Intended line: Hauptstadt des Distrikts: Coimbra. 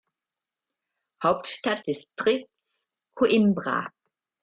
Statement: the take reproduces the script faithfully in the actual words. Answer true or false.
false